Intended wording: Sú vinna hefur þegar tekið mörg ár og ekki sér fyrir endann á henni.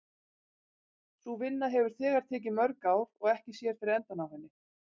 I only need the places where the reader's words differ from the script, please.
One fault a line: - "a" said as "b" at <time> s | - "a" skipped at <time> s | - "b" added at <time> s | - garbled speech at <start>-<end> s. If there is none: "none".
none